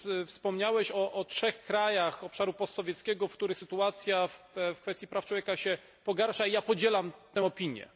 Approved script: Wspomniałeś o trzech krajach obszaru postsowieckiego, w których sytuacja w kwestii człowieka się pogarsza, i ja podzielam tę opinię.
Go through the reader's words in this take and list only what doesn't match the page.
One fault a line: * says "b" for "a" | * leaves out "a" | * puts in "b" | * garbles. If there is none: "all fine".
* puts in "praw"